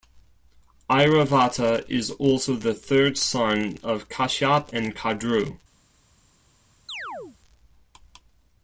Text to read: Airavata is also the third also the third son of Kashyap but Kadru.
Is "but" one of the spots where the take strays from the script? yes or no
yes